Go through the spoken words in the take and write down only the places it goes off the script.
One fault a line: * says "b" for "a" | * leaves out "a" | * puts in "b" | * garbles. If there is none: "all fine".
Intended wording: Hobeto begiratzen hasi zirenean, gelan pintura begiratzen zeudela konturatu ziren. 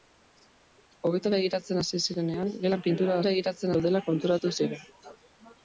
all fine